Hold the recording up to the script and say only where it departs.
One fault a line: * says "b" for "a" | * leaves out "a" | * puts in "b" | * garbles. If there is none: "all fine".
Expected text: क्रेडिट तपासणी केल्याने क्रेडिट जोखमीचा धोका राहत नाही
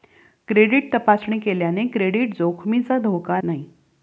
* leaves out "राहत"